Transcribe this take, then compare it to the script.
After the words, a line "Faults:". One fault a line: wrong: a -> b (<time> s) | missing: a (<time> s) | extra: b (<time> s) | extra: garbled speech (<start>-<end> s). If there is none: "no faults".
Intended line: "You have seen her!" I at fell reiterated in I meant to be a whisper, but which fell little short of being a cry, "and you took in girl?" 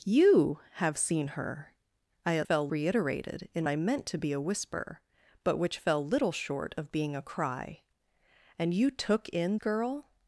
"You have seen her!" I at fell reiterated in I meant to be a whisper, but which fell little short of being a cry, "and you took in girl?"
Faults:
no faults